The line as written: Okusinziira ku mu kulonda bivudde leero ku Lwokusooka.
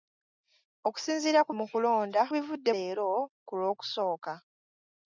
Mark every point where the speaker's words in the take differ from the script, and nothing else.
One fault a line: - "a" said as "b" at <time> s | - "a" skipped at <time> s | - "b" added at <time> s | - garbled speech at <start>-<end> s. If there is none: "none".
none